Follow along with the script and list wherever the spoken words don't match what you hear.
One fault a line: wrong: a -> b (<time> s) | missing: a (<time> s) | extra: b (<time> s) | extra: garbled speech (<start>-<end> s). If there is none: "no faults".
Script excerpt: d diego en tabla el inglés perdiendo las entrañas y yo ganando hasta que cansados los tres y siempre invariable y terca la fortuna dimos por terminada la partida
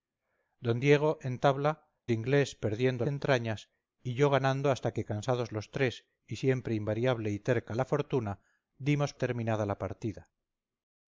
missing: el (1.7 s)
missing: las (3.0 s)
missing: por (9.1 s)